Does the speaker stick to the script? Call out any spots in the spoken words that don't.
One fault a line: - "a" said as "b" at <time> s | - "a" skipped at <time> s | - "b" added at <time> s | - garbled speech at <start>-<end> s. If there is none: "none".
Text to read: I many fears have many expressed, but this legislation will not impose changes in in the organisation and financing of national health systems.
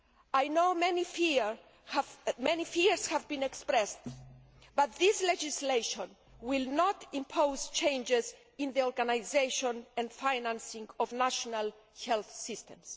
- "know" added at 0.5 s
- "many" said as "been" at 3.3 s
- "in" skipped at 8.7 s